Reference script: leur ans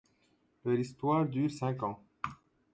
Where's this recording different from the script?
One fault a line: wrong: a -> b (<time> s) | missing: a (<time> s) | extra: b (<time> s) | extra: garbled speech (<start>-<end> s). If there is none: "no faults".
extra: histoire dure cinq (0.8 s)